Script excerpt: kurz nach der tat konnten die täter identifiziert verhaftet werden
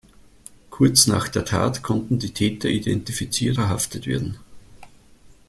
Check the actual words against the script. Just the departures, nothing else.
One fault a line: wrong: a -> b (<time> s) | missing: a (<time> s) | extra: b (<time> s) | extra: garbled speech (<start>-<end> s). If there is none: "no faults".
no faults